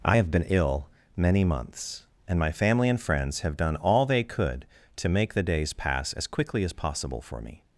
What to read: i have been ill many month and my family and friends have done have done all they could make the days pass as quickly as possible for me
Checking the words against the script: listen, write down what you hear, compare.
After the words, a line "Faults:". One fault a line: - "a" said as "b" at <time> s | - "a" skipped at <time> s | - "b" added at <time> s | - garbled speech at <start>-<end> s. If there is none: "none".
i have been ill many months and my family and friends have done all they could to make the days pass as quickly as possible for me
Faults:
- "month" said as "months" at 1.4 s
- "have done" skipped at 3.7 s
- "to" added at 4.9 s